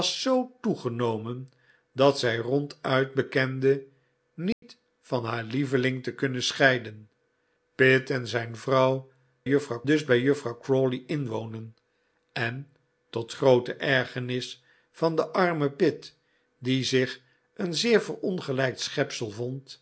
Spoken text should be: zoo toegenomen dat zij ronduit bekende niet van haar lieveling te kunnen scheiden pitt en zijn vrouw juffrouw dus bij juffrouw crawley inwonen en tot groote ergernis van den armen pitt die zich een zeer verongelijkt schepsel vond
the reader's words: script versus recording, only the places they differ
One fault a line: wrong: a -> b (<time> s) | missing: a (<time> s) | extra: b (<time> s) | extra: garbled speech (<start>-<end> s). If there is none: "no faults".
no faults